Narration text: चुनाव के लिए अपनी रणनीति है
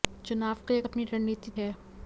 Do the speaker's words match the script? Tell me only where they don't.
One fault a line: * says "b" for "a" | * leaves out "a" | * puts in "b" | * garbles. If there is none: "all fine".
all fine